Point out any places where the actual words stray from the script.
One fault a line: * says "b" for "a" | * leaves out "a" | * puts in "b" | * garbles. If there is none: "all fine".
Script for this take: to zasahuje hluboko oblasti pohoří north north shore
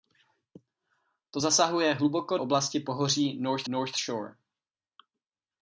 all fine